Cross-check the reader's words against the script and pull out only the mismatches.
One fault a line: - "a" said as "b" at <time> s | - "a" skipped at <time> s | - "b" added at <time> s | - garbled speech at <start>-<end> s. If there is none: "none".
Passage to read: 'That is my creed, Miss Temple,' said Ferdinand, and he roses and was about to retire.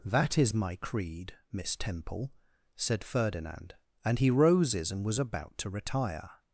none